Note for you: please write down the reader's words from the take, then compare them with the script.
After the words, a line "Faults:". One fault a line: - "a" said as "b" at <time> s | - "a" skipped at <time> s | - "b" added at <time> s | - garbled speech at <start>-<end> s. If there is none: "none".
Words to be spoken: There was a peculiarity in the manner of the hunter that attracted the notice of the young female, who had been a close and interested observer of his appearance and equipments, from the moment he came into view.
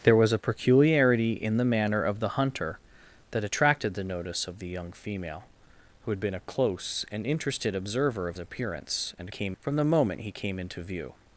There was a peculiarity in the manner of the hunter that attracted the notice of the young female, who had been a close and interested observer of appearance and came, from the moment he came into view.
Faults:
- "his" skipped at 8.4 s
- "equipments" said as "came" at 9.3 s